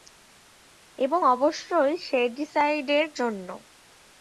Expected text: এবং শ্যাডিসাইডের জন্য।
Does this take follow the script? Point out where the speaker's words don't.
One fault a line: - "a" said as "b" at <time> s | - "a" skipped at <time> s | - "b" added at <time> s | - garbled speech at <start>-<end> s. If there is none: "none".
- "অবশ্যই" added at 1.3 s